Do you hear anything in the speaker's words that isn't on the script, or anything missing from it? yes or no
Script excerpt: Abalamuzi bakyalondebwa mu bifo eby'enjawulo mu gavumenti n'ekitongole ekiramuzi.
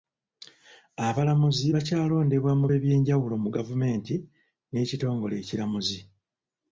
yes